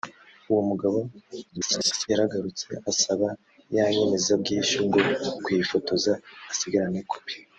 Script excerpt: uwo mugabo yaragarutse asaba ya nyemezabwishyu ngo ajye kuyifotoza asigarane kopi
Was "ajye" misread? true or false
true